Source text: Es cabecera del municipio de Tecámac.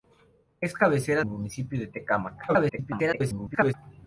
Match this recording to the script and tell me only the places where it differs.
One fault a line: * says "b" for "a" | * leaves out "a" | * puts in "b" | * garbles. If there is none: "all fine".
* leaves out "del"
* garbles